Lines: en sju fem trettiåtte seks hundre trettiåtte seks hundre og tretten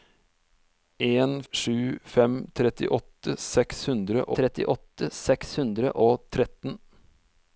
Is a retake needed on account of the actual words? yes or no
no